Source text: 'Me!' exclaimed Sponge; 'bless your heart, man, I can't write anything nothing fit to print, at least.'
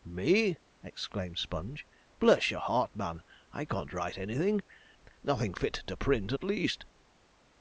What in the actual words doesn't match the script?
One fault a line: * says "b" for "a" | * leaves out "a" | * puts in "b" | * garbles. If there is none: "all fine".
all fine